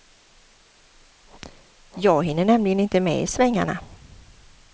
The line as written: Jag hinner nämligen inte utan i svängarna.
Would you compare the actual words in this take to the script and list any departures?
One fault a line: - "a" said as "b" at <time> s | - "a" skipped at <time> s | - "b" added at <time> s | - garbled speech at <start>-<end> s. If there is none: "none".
- "utan" said as "med" at 3.0 s